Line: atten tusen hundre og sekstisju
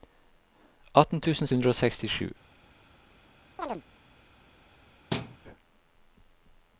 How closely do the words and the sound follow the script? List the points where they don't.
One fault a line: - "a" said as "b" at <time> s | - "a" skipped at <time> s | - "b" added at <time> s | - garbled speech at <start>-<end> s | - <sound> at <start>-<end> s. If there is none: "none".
- chirp at 3.6-3.8 s
- thud at 5.1-5.4 s